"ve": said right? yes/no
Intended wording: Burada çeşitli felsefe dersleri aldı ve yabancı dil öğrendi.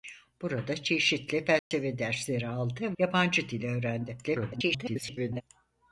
no